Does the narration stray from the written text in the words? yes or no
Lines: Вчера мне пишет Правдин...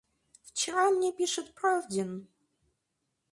no